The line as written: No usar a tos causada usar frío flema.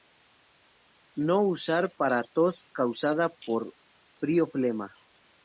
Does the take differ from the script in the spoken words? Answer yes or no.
yes